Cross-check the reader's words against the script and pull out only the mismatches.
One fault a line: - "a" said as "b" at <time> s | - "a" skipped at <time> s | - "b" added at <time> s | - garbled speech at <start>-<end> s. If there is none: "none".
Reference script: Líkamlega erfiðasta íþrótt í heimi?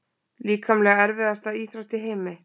none